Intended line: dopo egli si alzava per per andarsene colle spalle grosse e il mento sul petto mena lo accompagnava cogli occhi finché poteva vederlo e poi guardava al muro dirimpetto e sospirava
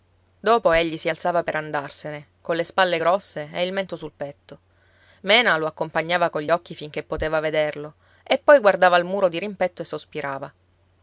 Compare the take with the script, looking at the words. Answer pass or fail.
fail